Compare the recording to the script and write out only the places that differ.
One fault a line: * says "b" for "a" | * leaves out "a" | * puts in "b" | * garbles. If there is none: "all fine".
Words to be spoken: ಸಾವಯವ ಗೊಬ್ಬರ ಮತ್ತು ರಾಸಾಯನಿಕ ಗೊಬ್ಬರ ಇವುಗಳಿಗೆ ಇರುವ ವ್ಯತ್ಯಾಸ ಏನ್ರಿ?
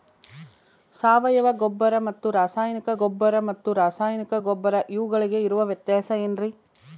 * puts in "ಮತ್ತು ರಾಸಾಯನಿಕ ಗೊಬ್ಬರ"